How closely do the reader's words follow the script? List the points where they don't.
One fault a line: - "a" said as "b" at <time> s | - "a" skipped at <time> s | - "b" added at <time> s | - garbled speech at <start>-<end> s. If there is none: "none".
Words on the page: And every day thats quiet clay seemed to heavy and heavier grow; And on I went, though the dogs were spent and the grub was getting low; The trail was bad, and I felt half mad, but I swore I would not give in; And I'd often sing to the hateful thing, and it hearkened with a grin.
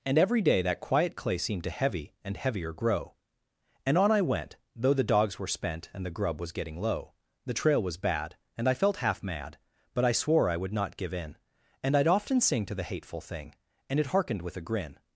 - "thats" said as "that" at 0.6 s